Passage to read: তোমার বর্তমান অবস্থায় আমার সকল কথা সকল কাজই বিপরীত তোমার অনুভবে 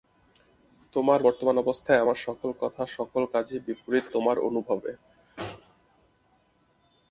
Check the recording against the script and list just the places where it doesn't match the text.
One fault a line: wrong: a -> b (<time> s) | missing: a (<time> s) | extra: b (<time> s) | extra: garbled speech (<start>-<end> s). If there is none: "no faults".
no faults